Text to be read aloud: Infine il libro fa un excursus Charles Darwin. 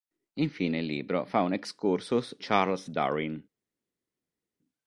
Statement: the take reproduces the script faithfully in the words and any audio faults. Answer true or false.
true